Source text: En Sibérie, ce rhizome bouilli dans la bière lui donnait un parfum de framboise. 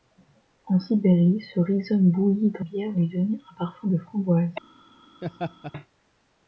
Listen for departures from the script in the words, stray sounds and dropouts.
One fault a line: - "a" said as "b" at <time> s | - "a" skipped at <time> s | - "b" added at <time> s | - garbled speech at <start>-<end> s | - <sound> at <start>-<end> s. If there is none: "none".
- "la" skipped at 2.6 s
- laugh at 5.2-5.7 s